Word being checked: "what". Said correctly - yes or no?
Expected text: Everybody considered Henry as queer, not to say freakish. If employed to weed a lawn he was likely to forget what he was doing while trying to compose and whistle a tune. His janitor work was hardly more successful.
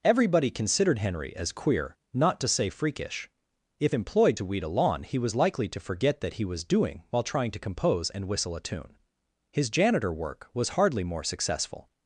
no